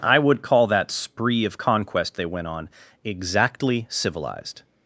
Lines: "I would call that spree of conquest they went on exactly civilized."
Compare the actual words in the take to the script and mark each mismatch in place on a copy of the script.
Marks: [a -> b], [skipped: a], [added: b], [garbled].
"I would call that spree of conquest they went on exactly civilized."